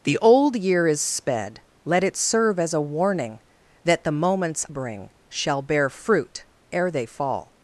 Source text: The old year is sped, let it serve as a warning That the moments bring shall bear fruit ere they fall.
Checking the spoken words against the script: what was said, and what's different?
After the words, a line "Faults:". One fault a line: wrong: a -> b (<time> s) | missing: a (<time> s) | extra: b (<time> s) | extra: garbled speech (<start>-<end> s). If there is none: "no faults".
The old year is sped, let it serve as a warning That the moments bring shall bear fruit ere they fall.
Faults:
no faults